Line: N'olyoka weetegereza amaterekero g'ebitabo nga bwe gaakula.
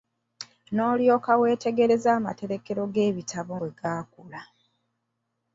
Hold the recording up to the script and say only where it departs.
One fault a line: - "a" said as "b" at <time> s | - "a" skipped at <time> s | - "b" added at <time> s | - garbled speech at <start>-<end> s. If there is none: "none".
- "nga" skipped at 3.5 s